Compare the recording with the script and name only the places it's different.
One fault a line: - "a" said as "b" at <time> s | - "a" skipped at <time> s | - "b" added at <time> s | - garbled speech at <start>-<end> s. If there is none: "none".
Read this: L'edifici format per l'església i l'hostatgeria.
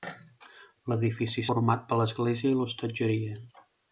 none